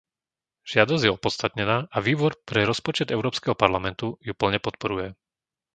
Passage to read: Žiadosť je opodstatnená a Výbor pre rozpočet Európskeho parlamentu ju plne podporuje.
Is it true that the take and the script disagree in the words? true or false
false